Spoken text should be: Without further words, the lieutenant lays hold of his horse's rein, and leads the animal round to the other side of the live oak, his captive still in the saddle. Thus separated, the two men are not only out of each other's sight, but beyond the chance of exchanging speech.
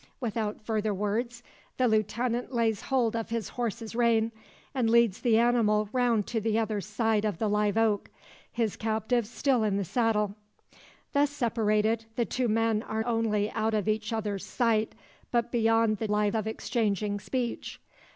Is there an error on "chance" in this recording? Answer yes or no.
yes